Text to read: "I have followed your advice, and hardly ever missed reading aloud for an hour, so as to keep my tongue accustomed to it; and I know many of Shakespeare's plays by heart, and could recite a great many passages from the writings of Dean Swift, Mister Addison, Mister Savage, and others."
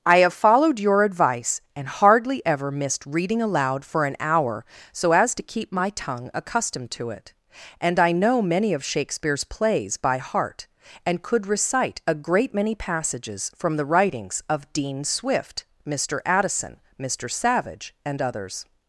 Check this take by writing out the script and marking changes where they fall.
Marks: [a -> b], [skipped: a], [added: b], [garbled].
"I have followed your advice, and hardly ever missed reading aloud for an hour, so as to keep my tongue accustomed to it; and I know many of Shakespeare's plays by heart, and could recite a great many passages from the writings of Dean Swift, Mister Addison, Mister Savage, and others."